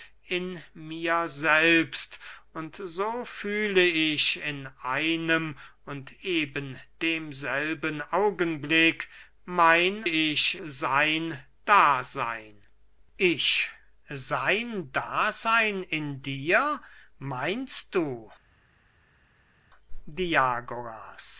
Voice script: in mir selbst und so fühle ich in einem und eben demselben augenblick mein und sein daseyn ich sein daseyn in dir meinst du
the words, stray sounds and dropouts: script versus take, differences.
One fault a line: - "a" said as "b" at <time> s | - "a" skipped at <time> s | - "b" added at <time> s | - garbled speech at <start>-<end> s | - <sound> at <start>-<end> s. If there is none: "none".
- "und" said as "ich" at 10.0 s